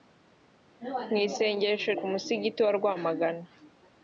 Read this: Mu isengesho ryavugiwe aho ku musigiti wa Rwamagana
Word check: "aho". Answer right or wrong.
wrong